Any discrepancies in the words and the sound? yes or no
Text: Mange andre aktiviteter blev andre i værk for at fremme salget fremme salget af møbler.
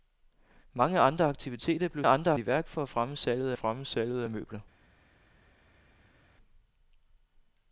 no